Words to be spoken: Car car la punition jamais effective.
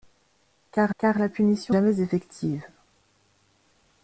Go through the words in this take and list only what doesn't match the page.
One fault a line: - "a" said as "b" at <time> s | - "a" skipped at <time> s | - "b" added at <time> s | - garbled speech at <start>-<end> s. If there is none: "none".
none